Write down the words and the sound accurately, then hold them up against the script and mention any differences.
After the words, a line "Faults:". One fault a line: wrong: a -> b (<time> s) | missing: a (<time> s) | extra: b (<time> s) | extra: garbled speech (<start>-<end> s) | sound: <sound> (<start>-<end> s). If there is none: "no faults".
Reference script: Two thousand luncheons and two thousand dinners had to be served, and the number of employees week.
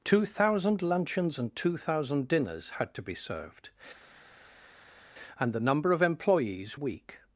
Two thousand luncheons and two thousand dinners had to be served, and the number of employees week.
Faults:
no faults